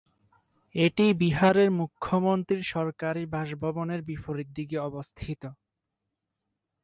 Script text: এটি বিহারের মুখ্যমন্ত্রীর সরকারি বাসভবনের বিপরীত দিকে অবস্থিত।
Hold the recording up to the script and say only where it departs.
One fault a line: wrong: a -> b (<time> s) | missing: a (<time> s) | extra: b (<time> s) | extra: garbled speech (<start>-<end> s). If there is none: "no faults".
no faults